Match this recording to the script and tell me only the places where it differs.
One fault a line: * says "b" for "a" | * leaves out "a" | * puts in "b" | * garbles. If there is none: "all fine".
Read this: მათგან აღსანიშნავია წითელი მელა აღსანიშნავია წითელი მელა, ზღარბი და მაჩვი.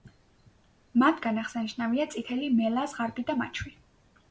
* leaves out "აღსანიშნავია წითელი მელა"